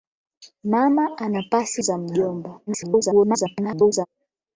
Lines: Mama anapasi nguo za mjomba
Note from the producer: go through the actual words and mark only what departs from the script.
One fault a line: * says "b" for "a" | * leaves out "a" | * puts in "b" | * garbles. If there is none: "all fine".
* leaves out "nguo"
* garbles